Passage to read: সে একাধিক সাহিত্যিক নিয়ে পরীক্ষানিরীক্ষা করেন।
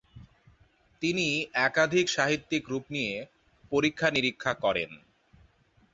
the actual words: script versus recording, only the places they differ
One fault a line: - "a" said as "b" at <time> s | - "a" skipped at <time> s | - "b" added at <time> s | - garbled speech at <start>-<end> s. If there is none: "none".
- "সে" said as "তিনি" at 1.0 s
- "রূপ" added at 2.7 s